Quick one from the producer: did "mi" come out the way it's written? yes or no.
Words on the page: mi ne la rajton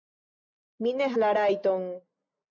yes